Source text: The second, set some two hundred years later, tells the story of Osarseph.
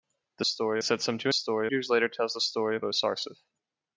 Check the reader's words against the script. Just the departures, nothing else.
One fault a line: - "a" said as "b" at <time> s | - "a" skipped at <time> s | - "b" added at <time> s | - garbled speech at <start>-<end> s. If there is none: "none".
- "second" said as "story" at 0.4 s
- "hundred" said as "story" at 1.3 s